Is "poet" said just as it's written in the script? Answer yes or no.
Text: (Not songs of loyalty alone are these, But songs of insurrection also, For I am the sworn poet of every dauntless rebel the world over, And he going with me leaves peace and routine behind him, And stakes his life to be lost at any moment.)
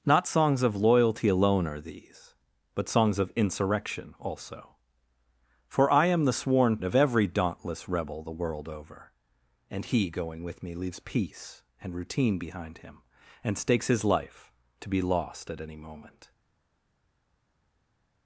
no